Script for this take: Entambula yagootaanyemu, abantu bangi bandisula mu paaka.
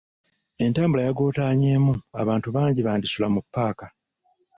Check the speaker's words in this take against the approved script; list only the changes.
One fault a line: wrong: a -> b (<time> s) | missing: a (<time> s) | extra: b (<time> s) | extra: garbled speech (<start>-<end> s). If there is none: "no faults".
no faults